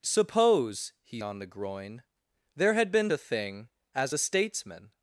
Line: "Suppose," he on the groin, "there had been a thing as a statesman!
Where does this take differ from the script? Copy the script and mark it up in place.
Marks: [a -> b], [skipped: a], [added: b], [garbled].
"Suppose," he on the groin, "there had been a thing as a statesman!